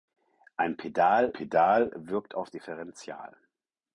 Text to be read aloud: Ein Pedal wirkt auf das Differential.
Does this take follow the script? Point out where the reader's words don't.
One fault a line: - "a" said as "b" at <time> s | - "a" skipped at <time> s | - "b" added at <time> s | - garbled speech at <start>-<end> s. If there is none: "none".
- "Pedal" added at 1.3 s
- "das" skipped at 2.5 s